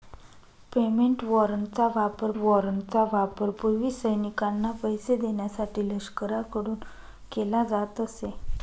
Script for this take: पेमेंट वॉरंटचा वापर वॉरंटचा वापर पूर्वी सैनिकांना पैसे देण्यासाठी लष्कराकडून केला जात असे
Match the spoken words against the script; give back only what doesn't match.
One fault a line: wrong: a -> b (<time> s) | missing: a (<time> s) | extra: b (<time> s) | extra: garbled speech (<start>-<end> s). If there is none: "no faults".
no faults